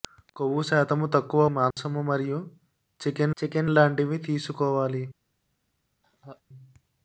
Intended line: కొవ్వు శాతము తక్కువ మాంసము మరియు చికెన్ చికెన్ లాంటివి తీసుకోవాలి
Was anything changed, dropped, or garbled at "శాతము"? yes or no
no